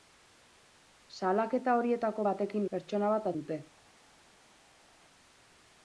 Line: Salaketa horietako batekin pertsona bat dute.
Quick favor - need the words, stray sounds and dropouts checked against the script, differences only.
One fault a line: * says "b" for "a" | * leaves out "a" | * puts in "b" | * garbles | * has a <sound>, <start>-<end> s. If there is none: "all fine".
all fine